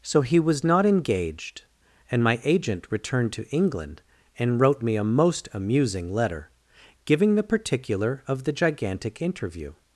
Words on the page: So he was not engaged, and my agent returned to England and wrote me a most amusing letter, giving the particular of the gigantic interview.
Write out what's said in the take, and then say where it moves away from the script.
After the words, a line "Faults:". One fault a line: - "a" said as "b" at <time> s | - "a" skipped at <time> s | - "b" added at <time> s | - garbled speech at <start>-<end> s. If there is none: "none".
So he was not engaged, and my agent returned to England and wrote me a most amusing letter, giving the particular of the gigantic interview.
Faults:
none